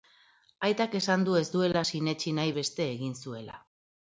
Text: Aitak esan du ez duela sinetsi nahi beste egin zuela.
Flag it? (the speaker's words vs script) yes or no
no